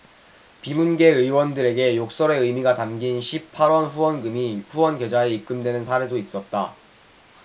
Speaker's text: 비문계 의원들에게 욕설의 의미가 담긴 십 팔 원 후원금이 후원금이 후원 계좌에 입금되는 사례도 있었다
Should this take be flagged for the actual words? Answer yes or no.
yes